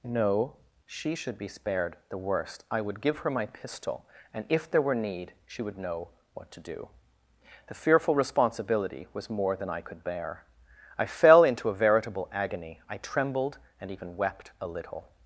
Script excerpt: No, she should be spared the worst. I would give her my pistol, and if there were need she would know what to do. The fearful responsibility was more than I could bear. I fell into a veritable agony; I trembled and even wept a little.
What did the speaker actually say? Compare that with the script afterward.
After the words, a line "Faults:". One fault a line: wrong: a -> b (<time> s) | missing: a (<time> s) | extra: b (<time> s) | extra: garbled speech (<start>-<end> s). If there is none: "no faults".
No, she should be spared the worst. I would give her my pistol, and if there were need she would know what to do. The fearful responsibility was more than I could bear. I fell into a veritable agony; I trembled and even wept a little.
Faults:
no faults